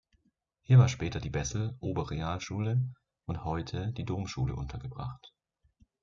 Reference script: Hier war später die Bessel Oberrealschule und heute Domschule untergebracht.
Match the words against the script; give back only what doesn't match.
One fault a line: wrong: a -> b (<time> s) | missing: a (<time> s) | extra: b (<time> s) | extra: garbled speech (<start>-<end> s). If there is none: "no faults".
extra: die (3.9 s)